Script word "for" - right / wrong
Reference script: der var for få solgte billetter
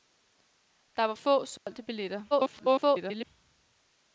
wrong